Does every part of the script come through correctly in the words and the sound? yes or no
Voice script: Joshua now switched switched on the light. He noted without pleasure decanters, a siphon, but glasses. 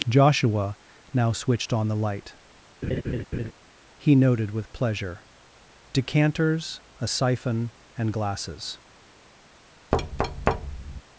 no